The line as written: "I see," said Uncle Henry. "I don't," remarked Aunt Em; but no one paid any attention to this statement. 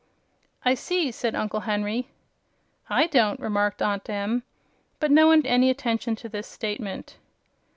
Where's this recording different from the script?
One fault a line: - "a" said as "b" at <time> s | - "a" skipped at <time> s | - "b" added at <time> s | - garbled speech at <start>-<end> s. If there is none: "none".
- "paid" skipped at 5.4 s